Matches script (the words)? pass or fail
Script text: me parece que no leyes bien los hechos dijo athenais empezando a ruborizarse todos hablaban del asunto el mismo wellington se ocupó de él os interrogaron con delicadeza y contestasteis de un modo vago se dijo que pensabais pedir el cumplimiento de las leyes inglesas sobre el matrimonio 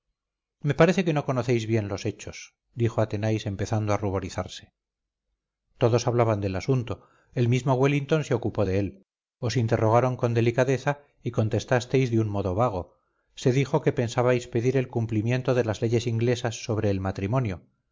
fail